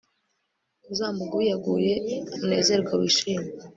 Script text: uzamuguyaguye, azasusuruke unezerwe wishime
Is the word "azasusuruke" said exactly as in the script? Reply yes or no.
no